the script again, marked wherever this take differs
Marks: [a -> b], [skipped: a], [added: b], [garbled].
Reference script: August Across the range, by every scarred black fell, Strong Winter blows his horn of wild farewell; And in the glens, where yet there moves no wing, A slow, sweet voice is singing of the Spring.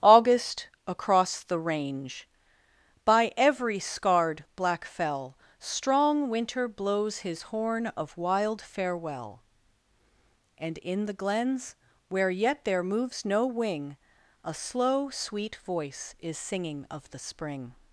August Across the range, by every scarred black fell, Strong Winter blows his horn of wild farewell; And in the glens, where yet there moves no wing, A slow, sweet voice is singing of the Spring.